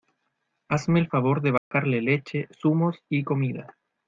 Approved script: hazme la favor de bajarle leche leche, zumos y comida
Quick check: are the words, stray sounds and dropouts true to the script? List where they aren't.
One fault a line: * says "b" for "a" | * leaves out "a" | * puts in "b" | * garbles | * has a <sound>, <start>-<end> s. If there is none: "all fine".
* says "el" for "la"
* has a dropout, 1.6-1.7 s
* leaves out "leche"